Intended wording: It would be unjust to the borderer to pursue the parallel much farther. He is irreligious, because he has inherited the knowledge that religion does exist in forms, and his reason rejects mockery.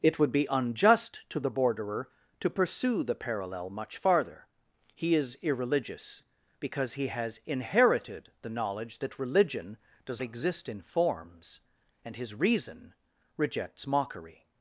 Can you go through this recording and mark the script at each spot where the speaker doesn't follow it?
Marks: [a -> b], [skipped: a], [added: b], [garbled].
It would be unjust to the borderer to pursue the parallel much farther. He is irreligious, because he has inherited the knowledge that religion does exist in forms, and his reason rejects mockery.